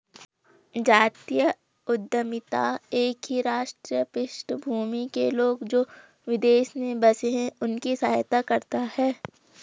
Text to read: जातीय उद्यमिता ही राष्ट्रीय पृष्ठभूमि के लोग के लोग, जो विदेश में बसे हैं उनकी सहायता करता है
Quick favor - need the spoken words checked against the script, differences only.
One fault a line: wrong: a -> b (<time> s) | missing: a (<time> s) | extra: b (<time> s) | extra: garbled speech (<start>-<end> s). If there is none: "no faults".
extra: एक (2.9 s)
missing: के लोग (5.6 s)